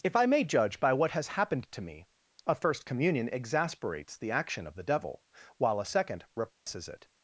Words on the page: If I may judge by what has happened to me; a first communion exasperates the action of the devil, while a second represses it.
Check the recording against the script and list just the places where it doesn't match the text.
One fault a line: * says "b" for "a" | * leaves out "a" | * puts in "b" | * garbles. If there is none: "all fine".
all fine